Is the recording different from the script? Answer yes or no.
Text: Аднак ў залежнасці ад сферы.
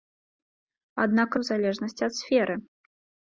no